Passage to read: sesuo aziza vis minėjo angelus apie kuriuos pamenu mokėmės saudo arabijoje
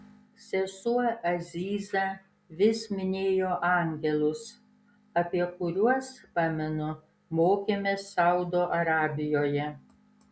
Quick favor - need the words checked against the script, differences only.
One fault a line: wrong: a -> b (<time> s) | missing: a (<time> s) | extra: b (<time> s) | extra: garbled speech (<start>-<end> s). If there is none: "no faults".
no faults